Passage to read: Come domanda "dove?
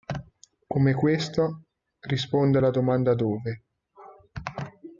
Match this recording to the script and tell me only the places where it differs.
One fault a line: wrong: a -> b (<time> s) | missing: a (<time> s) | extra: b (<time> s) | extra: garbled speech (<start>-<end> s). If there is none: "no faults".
extra: questo risponde alla (0.9 s)